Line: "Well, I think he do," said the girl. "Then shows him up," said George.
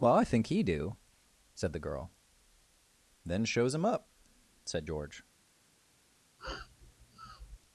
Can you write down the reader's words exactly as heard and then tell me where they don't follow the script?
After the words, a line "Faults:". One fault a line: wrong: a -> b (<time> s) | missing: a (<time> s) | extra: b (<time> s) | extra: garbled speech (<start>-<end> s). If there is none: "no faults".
"Well, I think he do," said the girl. "Then shows him up," said George.
Faults:
no faults